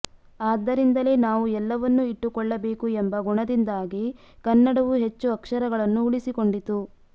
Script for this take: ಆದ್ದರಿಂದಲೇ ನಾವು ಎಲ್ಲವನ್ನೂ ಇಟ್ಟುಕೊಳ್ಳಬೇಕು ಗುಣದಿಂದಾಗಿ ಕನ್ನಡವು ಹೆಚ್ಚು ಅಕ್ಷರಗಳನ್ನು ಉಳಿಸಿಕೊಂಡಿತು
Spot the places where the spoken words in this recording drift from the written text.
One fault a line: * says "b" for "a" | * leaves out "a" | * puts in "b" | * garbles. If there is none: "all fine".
* puts in "ಎಂಬ"